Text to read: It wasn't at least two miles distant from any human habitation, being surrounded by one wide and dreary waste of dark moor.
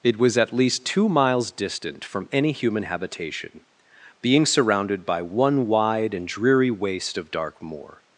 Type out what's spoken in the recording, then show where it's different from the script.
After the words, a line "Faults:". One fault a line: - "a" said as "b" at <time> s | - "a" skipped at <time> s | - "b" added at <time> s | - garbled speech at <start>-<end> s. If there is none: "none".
It was at least two miles distant from any human habitation, being surrounded by one wide and dreary waste of dark moor.
Faults:
- "wasn't" said as "was" at 0.2 s